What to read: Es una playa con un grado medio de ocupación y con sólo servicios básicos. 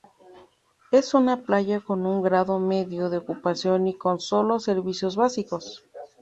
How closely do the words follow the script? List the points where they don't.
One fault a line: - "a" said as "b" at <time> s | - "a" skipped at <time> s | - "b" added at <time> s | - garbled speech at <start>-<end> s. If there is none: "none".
none